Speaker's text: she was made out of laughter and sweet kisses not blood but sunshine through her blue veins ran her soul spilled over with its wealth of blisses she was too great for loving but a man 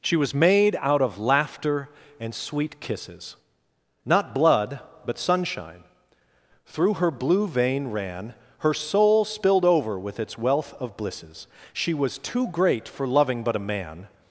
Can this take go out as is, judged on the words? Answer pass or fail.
fail